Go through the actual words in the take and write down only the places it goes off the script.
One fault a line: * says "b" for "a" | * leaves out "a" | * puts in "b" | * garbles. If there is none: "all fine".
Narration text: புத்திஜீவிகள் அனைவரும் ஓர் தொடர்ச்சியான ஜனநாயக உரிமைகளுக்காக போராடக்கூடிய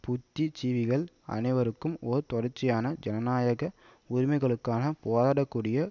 all fine